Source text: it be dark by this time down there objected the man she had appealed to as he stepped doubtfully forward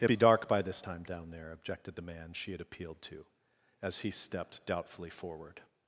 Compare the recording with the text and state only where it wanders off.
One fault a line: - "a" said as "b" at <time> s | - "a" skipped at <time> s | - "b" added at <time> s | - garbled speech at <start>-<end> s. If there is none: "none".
none